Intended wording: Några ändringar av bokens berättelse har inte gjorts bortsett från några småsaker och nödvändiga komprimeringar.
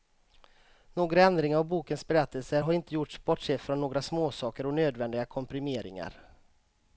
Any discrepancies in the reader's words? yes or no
no